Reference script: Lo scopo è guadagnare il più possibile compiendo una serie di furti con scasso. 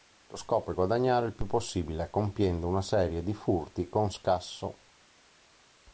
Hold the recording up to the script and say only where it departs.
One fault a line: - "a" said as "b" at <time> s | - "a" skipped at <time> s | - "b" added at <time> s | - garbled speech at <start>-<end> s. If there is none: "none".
none